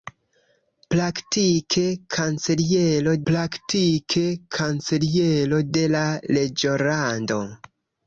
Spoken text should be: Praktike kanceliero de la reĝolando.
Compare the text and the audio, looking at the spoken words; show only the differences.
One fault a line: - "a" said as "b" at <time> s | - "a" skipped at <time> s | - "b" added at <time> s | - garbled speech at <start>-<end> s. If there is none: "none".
- "praktike kanceliero" added at 3.3 s